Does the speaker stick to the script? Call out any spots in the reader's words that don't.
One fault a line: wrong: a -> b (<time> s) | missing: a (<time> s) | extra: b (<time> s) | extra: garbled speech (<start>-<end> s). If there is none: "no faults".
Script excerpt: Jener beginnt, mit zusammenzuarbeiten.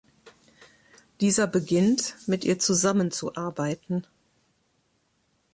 wrong: Jener -> Dieser (1.2 s)
extra: ihr (2.4 s)